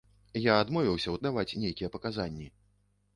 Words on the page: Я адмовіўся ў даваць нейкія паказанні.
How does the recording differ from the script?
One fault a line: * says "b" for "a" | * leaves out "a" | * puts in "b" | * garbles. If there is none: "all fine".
all fine